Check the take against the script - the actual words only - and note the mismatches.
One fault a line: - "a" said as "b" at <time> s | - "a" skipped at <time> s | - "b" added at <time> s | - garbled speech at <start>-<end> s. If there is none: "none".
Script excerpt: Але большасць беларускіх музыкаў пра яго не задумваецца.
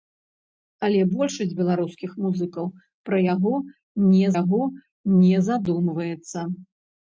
- "яго не" added at 4.4 s